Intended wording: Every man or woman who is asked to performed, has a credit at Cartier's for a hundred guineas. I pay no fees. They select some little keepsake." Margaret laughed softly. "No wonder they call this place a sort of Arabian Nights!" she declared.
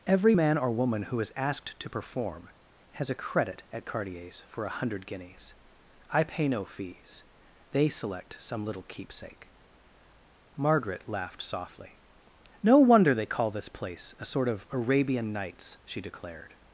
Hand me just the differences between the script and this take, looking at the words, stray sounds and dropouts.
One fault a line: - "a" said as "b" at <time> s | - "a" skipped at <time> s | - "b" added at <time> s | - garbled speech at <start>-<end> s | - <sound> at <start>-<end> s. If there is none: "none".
- "performed" said as "perform" at 1.9 s